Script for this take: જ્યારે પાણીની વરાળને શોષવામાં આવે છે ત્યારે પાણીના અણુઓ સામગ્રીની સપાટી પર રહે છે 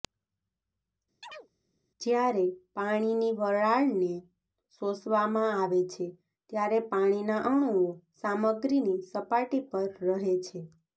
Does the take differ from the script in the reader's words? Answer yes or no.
no